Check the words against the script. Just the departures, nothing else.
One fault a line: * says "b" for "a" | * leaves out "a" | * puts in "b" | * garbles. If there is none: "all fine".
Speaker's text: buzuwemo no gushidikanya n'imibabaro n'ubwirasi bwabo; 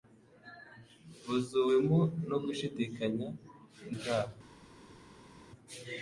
* leaves out "n'imibabaro n'ubwirasi"